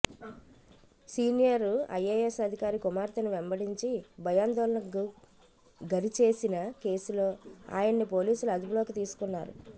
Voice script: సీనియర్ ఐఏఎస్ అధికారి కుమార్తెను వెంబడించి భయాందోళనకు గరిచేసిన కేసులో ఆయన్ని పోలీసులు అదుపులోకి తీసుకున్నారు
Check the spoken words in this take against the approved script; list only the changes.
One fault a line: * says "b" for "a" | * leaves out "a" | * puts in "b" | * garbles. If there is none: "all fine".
all fine